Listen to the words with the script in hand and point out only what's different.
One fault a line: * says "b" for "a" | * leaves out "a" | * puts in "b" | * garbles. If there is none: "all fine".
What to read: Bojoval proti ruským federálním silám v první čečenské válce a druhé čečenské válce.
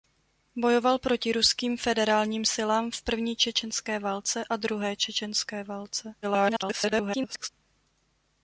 * garbles